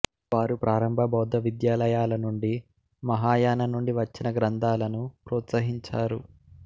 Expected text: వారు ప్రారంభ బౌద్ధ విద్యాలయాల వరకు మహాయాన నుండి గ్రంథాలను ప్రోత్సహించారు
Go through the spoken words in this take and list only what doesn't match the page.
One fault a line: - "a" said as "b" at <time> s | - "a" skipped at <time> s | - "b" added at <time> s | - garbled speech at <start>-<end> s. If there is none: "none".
- "వరకు" said as "నుండి" at 2.2 s
- "వచ్చిన" added at 4.0 s